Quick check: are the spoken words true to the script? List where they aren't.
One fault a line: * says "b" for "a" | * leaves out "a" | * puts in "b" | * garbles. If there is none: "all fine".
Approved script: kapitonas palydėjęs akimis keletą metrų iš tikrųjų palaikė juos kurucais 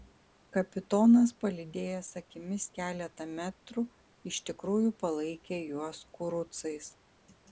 all fine